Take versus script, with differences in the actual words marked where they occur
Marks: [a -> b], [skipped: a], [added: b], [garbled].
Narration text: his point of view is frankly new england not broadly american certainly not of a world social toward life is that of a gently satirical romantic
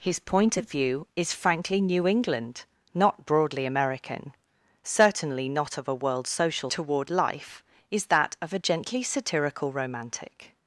his point of view is frankly new england not broadly american certainly not of a world social toward life is that of a gently satirical romantic